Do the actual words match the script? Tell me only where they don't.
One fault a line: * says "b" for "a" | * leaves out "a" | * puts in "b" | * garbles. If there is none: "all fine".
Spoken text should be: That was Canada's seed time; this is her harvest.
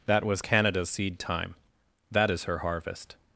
* says "that" for "this"